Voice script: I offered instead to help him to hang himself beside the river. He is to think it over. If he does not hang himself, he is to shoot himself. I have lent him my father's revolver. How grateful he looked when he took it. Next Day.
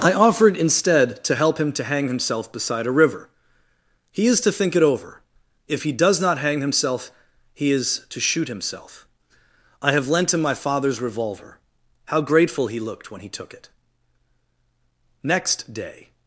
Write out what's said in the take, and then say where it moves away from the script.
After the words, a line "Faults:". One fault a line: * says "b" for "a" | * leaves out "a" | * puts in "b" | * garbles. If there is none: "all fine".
I offered instead to help him to hang himself beside a river. He is to think it over. If he does not hang himself, he is to shoot himself. I have lent him my father's revolver. How grateful he looked when he took it. Next Day.
Faults:
* says "a" for "the"